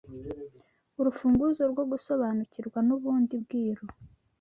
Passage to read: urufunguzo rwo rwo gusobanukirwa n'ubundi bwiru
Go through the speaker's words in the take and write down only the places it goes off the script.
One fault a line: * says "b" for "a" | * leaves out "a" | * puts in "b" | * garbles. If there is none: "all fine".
* leaves out "rwo"